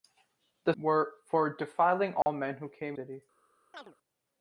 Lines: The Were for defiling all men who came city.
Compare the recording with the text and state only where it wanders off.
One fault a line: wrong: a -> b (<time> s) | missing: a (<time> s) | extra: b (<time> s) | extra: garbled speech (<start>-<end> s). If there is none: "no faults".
no faults